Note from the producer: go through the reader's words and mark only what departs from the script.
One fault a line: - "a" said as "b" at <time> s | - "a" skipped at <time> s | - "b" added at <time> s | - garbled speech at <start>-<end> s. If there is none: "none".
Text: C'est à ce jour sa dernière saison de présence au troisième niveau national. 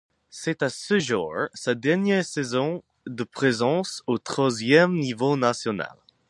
none